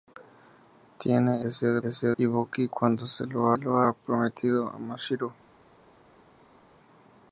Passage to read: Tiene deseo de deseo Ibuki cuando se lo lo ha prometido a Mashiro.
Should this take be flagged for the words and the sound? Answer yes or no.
no